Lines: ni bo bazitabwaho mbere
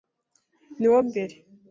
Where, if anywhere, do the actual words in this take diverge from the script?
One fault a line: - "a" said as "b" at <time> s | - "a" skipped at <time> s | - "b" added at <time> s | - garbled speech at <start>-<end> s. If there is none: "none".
- "bazitabwaho" skipped at 1.0 s